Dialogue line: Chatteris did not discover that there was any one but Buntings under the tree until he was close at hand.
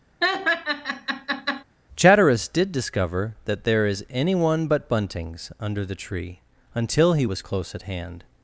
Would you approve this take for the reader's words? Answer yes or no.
no